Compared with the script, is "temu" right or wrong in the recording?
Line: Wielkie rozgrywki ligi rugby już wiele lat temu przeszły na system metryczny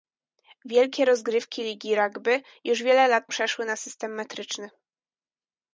wrong